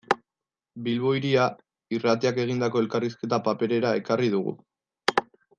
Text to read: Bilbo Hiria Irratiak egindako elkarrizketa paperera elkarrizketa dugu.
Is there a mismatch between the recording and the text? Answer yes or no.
yes